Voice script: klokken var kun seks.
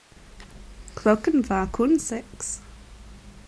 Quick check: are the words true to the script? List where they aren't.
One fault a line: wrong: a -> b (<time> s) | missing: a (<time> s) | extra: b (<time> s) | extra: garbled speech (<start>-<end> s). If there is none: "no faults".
no faults